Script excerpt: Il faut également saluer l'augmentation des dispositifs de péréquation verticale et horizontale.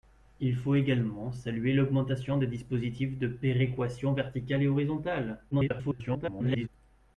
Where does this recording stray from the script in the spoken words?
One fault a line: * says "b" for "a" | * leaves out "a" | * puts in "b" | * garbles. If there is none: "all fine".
* garbles